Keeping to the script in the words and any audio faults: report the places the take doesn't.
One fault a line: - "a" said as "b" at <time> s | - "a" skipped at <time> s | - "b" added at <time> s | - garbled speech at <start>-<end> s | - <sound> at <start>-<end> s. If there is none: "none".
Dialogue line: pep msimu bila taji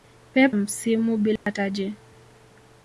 - dropout at 1.4-1.5 s